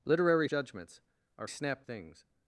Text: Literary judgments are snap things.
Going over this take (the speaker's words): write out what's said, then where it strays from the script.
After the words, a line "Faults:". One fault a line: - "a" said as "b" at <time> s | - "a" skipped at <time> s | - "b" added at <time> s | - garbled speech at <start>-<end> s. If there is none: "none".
Literary judgments are snap things.
Faults:
none